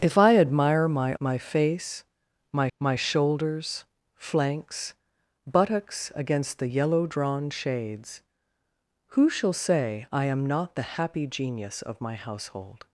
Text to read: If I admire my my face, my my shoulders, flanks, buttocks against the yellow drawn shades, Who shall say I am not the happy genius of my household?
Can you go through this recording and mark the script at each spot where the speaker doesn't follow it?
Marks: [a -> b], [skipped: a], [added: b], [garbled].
If I admire my my face, my my shoulders, flanks, buttocks against the yellow drawn shades, Who shall say I am not the happy genius of my household?